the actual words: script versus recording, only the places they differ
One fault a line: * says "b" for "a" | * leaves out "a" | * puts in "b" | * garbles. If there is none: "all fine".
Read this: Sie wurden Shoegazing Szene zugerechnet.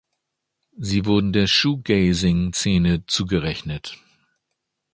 * puts in "der"